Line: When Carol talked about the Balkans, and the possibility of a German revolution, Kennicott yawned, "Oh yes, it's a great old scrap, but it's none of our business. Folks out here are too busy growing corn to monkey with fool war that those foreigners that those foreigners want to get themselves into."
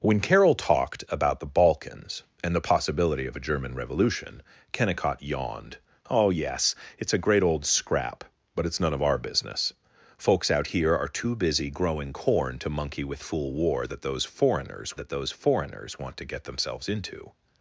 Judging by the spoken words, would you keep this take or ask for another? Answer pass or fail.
pass